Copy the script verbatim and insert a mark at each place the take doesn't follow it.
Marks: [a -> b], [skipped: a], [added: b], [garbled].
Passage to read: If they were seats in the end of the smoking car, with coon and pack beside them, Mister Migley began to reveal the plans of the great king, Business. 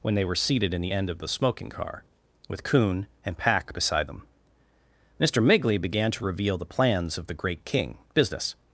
[If -> When] they were [seats -> seated] in the end of the smoking car, with coon and pack beside them, Mister Migley began to reveal the plans of the great king, Business.